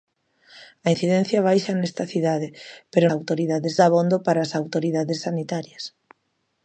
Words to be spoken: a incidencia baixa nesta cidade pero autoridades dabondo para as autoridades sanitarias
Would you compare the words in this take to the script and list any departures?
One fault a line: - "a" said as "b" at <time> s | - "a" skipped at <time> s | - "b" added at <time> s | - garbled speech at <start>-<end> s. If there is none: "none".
none